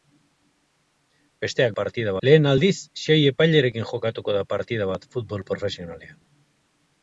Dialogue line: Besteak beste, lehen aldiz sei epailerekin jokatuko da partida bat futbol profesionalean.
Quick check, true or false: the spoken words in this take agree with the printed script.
false